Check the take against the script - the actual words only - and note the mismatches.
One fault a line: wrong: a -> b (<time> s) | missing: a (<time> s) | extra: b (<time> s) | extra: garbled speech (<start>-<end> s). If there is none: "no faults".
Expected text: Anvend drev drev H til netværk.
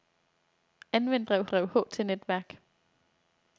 no faults